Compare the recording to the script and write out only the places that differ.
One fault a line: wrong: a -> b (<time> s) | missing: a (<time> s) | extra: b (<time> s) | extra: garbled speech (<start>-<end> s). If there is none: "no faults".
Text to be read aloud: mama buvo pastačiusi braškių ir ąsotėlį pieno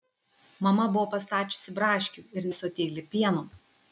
no faults